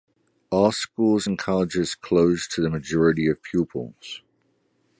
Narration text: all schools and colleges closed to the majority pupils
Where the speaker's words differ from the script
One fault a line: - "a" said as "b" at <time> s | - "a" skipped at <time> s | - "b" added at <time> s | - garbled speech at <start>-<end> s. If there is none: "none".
- "of" added at 3.3 s